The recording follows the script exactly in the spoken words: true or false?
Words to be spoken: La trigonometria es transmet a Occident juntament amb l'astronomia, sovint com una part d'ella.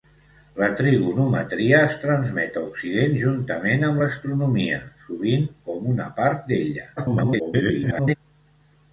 false